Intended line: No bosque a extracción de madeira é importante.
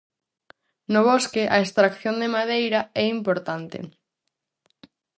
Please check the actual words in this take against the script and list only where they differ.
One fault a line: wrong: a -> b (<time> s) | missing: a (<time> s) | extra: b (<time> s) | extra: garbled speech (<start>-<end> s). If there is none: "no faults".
no faults